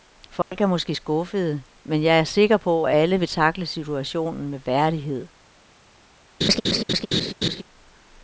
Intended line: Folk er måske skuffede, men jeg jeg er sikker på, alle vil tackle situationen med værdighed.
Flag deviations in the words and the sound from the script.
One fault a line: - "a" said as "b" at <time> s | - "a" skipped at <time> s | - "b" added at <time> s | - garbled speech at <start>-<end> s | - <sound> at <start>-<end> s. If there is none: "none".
- dropout at 0.4-0.5 s
- "jeg" skipped at 2.2 s
- "at" added at 2.8 s
- laugh at 6.4-7.6 s